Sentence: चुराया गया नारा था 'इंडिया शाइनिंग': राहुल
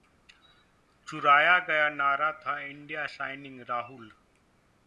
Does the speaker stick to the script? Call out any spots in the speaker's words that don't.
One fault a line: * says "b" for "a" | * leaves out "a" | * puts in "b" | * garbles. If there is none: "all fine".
all fine